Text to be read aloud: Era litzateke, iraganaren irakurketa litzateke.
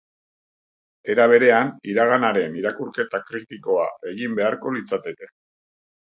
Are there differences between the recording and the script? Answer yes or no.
yes